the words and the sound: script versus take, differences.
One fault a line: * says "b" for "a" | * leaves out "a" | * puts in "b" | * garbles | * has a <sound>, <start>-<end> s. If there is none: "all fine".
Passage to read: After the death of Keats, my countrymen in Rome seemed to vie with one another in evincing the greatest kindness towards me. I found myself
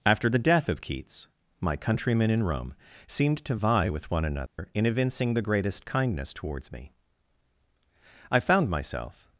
* has a dropout, 4.5-4.6 s